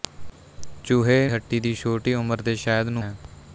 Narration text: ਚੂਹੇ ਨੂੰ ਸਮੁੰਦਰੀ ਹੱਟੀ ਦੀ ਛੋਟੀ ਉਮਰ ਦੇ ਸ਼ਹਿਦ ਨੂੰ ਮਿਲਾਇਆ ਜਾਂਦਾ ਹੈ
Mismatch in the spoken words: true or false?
true